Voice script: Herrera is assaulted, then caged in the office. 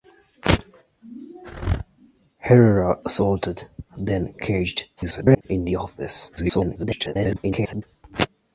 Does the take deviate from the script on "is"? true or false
true